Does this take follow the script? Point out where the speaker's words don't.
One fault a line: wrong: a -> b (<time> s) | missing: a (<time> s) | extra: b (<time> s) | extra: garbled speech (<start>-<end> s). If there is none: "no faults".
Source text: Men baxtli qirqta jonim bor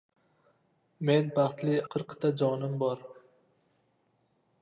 no faults